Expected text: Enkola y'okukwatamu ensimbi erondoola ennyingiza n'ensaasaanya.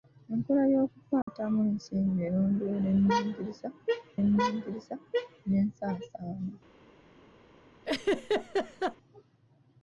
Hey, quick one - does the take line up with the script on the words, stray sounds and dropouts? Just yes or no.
no